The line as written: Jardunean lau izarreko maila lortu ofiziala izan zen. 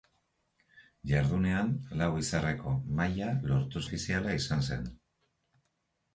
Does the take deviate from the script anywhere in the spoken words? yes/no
no